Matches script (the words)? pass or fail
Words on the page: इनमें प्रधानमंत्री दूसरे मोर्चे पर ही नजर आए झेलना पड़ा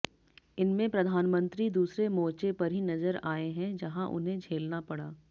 fail